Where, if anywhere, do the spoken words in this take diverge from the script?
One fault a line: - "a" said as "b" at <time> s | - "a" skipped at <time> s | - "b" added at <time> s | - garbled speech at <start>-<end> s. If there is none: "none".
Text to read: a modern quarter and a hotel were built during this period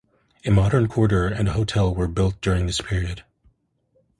none